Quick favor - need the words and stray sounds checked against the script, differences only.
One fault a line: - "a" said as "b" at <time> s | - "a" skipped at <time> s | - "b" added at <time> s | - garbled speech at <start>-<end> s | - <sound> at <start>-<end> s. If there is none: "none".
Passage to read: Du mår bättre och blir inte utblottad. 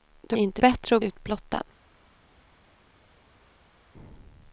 - "mår" said as "inte" at 0.3 s
- "blir inte" skipped at 1.0 s